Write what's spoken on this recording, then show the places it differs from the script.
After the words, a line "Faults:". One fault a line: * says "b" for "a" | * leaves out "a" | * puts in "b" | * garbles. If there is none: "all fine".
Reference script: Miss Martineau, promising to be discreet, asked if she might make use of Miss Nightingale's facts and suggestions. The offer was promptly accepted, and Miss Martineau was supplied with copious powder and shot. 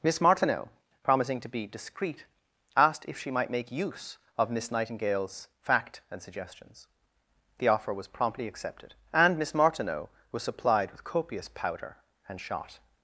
Miss Martineau, promising to be discreet, asked if she might make use of Miss Nightingale's fact and suggestions. The offer was promptly accepted, and Miss Martineau was supplied with copious powder and shot.
Faults:
* says "fact" for "facts"